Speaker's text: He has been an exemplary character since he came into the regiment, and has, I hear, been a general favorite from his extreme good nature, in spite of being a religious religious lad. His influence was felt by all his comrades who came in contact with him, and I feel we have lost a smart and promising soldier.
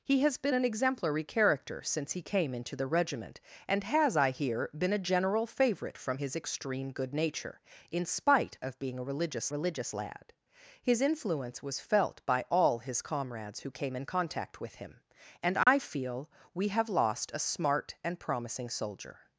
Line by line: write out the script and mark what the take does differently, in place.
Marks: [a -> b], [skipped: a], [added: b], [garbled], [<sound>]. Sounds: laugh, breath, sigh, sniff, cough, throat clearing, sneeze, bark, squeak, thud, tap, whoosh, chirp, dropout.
He has been an exemplary character since he came into the regiment, and has, I hear, been a general favorite from his extreme good nature, in spite of being a religious religious lad. His influence was felt by all his comrades who came in contact with him, and I [dropout] feel we have lost a smart and promising soldier.